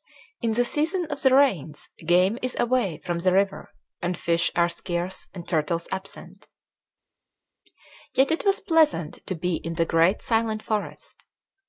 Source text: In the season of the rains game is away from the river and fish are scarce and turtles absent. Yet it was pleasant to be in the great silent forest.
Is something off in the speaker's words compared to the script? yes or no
no